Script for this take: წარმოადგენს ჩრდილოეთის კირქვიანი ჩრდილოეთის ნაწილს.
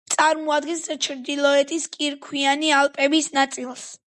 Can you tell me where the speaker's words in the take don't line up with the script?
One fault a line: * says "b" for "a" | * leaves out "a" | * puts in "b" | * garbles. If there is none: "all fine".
* says "ალპების" for "ჩრდილოეთის"